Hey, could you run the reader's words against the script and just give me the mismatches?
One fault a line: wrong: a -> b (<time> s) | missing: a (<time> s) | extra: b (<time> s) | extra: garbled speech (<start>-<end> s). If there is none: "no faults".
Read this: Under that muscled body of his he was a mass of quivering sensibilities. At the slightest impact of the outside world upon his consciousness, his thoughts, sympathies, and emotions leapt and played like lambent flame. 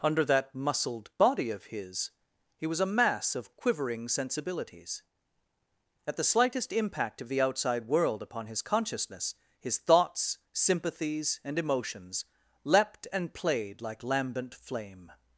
no faults